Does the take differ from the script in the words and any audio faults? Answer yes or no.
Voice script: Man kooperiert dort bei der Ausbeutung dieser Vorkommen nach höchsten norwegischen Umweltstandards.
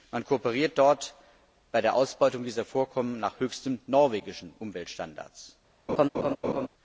yes